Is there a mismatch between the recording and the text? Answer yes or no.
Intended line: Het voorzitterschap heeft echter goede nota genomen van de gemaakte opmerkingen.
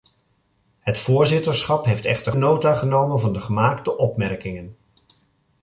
yes